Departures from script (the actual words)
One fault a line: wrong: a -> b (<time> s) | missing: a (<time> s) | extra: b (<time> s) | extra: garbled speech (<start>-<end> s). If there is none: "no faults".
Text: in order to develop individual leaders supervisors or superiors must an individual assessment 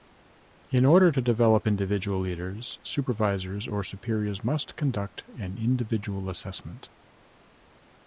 extra: conduct (4.8 s)